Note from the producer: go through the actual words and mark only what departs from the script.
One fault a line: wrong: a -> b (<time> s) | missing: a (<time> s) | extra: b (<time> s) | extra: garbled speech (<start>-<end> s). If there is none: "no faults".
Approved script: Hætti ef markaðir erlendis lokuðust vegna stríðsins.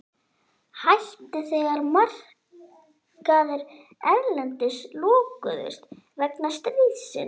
wrong: ef -> þegar (1.5 s)